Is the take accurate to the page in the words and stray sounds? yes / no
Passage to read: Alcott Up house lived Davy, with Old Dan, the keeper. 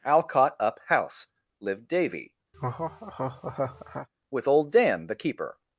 no